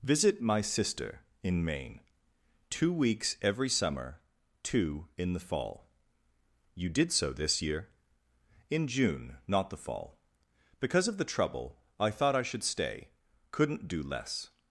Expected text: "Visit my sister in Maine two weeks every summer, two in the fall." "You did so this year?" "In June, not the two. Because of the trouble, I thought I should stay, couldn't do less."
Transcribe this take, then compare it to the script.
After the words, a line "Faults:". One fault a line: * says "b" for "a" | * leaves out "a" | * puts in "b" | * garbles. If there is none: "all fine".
"Visit my sister in Maine two weeks every summer, two in the fall." "You did so this year?" "In June, not the fall. Because of the trouble, I thought I should stay, couldn't do less."
Faults:
* says "fall" for "two"